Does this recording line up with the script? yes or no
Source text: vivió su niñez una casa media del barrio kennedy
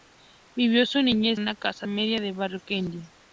yes